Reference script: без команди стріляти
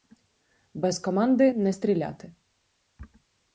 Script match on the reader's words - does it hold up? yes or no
no